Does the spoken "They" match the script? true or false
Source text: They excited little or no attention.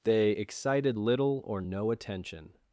true